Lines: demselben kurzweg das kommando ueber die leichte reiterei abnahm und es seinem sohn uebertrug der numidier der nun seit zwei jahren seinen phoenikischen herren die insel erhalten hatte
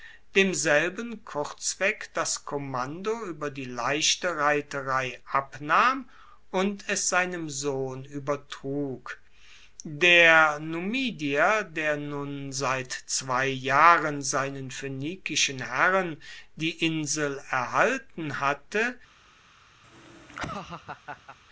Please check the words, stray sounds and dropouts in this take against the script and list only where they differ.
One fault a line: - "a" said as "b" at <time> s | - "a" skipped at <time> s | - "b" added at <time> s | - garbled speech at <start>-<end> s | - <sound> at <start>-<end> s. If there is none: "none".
- laugh at 19.8-21.4 s